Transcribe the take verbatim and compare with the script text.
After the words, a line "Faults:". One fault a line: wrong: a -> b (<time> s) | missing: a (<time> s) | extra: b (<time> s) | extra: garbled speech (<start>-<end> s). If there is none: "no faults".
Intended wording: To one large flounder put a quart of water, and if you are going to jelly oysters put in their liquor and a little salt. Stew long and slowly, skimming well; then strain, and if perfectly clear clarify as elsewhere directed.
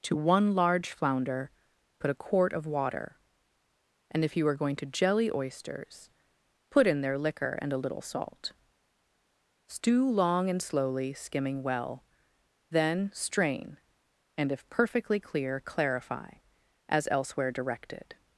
To one large flounder put a quart of water, and if you are going to jelly oysters put in their liquor and a little salt. Stew long and slowly, skimming well; then strain, and if perfectly clear clarify as elsewhere directed.
Faults:
no faults